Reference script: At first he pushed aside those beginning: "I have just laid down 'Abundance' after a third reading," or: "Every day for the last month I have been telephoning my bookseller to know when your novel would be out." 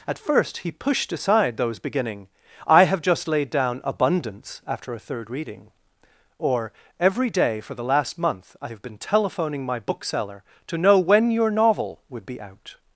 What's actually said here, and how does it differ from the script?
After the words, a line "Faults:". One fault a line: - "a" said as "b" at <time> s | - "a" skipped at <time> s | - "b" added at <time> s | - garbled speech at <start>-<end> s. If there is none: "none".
At first he pushed aside those beginning: "I have just laid down 'Abundance' after a third reading," or: "Every day for the last month I have been telephoning my bookseller to know when your novel would be out."
Faults:
none